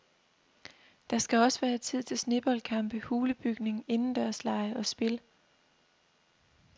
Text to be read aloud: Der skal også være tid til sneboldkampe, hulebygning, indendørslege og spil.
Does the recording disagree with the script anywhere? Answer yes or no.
no